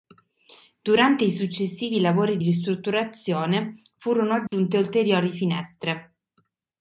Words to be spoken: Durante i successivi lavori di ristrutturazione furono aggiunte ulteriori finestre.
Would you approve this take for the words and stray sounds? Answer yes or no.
no